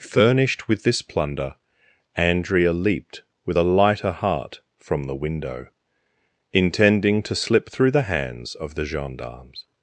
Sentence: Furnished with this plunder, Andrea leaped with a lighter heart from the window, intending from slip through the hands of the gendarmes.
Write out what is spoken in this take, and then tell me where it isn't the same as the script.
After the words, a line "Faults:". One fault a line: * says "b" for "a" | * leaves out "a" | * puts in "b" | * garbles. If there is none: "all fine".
Furnished with this plunder, Andrea leaped with a lighter heart from the window, intending to slip through the hands of the gendarmes.
Faults:
* says "to" for "from"